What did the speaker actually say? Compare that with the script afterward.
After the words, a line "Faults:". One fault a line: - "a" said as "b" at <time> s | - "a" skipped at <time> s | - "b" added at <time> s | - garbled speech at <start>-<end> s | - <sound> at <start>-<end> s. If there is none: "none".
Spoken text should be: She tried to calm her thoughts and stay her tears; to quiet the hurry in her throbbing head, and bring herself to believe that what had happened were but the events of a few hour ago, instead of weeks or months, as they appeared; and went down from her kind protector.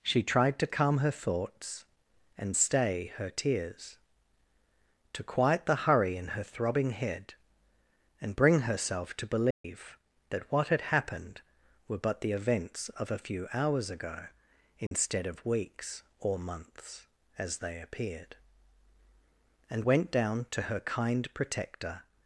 She tried to calm her thoughts and stay her tears; to quiet the hurry in her throbbing head, and bring herself to believe that what had happened were but the events of a few hours ago, instead of weeks or months, as they appeared; and went down to her kind protector.
Faults:
- dropout at 9.5-9.6 s
- "hour" said as "hours" at 13.5 s
- dropout at 14.9-14.9 s
- "from" said as "to" at 20.5 s